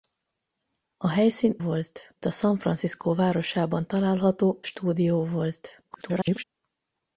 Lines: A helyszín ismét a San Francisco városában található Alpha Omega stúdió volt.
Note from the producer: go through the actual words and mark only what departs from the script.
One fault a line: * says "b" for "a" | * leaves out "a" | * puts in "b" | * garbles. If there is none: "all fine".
* says "volt" for "ismét"
* leaves out "Alpha Omega"
* garbles